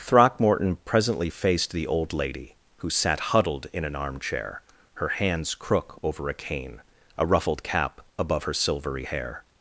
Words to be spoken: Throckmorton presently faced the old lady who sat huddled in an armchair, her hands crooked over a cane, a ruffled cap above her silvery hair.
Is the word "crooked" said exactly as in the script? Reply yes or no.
no